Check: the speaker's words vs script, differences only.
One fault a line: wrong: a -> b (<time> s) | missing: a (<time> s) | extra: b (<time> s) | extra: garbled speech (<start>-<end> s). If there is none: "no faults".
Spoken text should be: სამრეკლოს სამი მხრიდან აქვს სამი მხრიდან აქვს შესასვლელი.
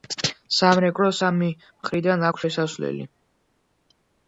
missing: სამი მხრიდან აქვს (2.5 s)